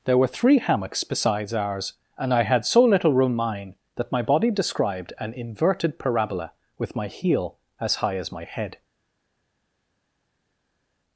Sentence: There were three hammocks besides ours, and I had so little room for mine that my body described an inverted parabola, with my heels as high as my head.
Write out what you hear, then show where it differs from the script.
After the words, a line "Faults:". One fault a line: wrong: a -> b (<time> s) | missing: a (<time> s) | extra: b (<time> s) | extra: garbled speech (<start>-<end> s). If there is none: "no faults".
There were three hammocks besides ours, and I had so little room mine that my body described an inverted parabola, with my heel as high as my head.
Faults:
missing: for (3.4 s)
wrong: heels -> heel (7.1 s)